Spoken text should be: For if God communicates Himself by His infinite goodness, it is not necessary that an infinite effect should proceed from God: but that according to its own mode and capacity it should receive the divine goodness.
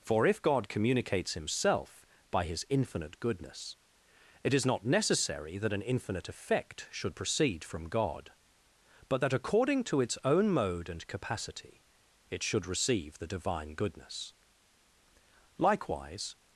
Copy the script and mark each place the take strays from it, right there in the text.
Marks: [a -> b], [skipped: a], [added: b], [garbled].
For if God communicates Himself by His infinite goodness, it is not necessary that an infinite effect should proceed from God: but that according to its own mode and capacity it should receive the divine goodness. [added: Likewise]